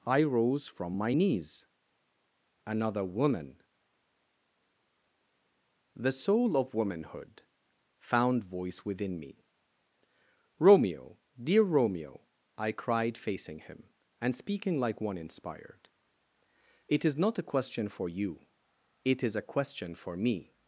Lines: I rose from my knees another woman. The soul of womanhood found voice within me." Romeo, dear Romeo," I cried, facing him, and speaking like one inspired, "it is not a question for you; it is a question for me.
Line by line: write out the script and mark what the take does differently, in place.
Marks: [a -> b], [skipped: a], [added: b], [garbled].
I rose from my knees another woman. The soul of womanhood found voice within me." Romeo, dear Romeo," I cried, facing him, and speaking like one inspired, "it is not a question for you; it is a question for me.